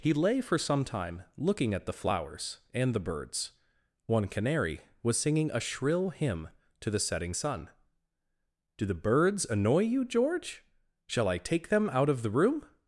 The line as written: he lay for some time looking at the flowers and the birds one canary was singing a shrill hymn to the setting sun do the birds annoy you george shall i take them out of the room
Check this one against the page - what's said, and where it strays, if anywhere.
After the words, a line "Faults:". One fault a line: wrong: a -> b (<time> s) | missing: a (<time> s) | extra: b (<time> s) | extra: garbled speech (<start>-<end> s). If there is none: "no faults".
he lay for some time looking at the flowers and the birds one canary was singing a shrill hymn to the setting sun do the birds annoy you george shall i take them out of the room
Faults:
no faults